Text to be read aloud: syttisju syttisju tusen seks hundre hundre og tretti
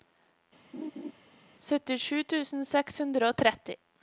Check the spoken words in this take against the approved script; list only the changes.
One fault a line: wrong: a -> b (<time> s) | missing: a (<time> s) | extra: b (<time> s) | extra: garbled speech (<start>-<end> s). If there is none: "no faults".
missing: syttisju (2.2 s)
missing: hundre (3.3 s)